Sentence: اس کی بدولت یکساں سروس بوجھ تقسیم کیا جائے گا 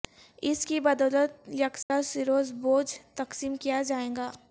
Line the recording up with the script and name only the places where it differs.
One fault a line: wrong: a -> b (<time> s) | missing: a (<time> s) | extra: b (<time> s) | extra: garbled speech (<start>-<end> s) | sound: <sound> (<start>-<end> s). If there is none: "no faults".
sound: dropout (1.8-1.9 s)